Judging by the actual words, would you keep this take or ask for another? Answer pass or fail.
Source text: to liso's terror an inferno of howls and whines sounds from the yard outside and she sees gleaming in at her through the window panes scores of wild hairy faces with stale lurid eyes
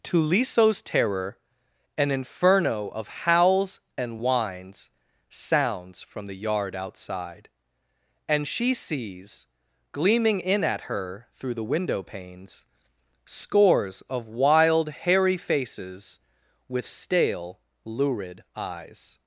pass